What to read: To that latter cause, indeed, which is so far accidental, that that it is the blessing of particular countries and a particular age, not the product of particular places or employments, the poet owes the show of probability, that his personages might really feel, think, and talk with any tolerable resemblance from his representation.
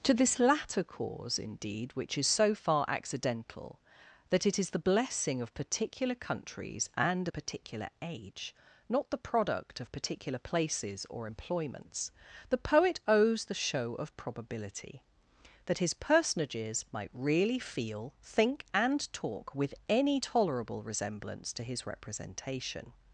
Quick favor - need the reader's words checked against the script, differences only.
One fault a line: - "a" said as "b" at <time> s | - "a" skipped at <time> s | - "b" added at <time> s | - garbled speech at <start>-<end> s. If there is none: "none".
- "that" said as "this" at 0.1 s
- "that" skipped at 4.5 s
- "from" said as "to" at 21.5 s